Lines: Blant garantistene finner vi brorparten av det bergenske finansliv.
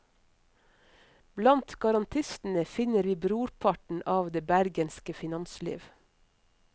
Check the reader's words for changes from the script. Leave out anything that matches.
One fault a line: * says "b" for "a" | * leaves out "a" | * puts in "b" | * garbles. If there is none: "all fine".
all fine